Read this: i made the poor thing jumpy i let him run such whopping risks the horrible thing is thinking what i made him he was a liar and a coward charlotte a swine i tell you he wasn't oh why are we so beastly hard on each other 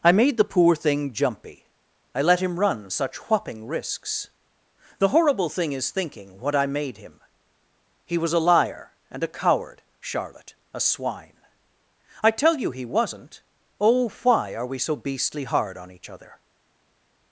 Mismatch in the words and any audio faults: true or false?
false